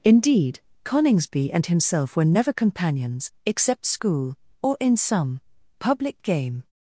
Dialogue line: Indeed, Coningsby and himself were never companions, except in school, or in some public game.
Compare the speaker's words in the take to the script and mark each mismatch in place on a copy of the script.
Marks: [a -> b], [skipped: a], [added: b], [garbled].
Indeed, Coningsby and himself were never companions, except [skipped: in] school, or in some public game.